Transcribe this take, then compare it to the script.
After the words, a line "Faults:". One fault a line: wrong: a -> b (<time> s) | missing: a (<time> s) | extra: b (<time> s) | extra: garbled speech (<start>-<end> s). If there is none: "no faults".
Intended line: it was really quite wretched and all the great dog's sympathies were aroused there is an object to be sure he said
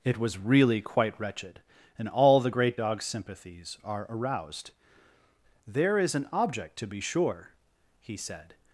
it was really quite wretched and all the great dog's sympathies are aroused there is an object to be sure he said
Faults:
wrong: were -> are (3.8 s)